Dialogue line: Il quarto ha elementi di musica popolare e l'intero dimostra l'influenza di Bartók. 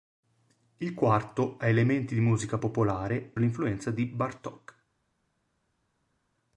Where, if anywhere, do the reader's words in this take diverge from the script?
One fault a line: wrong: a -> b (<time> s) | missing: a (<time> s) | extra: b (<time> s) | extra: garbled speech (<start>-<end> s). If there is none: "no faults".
missing: e l'intero dimostra (3.3 s)